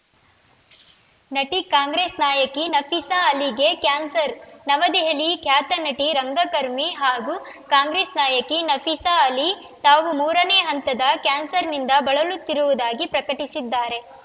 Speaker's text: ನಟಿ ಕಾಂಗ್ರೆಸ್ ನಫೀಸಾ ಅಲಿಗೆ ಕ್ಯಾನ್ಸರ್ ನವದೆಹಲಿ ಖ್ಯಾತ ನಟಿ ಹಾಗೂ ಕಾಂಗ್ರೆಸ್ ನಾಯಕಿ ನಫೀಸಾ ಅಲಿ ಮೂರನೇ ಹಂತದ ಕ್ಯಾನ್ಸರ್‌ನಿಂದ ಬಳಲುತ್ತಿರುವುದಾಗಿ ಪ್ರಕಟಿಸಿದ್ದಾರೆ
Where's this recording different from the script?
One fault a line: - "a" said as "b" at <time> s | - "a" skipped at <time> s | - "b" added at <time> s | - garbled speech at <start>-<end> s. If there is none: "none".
- "ನಾಯಕಿ" added at 2.2 s
- "ರಂಗಕರ್ಮಿ" added at 6.1 s
- "ತಾವು" added at 9.8 s